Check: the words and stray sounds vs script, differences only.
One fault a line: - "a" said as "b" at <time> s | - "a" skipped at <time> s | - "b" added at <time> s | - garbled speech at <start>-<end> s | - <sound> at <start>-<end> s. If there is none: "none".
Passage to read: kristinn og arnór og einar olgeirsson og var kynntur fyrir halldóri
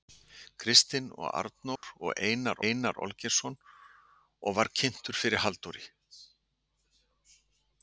- dropout at 1.8-1.8 s
- "einar" added at 2.7 s